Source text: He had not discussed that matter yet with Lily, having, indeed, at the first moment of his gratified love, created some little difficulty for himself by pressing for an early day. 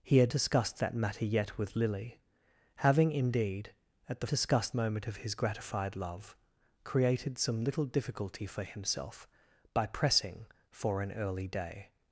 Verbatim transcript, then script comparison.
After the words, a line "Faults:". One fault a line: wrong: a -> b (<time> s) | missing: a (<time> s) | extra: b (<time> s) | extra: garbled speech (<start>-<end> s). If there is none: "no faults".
He had discussed that matter yet with Lily, having, indeed, at the discussed moment of his gratified love, created some little difficulty for himself by pressing for an early day.
Faults:
missing: not (0.3 s)
wrong: first -> discussed (4.3 s)